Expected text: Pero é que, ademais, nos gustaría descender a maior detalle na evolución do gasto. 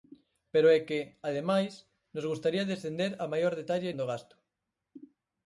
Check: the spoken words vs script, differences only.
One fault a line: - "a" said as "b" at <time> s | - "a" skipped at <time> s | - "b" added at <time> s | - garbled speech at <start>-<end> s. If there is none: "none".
- "na evolución" skipped at 3.9 s